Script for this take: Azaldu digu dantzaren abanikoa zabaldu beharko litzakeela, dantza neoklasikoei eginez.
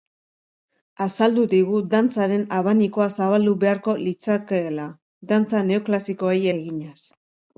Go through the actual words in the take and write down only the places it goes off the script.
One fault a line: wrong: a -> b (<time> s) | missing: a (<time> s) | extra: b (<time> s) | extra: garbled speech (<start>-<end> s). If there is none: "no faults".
no faults